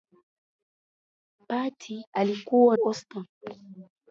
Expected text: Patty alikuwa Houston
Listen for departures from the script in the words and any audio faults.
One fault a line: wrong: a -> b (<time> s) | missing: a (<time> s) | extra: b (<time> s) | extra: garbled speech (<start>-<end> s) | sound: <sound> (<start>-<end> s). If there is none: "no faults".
no faults